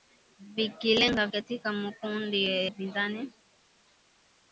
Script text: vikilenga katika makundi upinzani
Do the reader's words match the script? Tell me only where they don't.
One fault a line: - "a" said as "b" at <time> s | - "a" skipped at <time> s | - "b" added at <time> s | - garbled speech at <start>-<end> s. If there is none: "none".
none